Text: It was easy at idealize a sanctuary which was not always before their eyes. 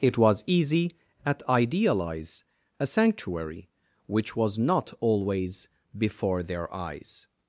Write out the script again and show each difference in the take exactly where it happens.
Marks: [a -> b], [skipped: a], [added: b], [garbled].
It was easy at idealize a sanctuary which was not always before their eyes.